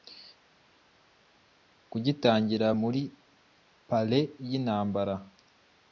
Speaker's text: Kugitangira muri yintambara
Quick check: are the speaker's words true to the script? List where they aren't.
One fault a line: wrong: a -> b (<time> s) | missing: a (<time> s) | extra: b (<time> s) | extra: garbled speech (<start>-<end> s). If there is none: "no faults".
extra: parley (3.9 s)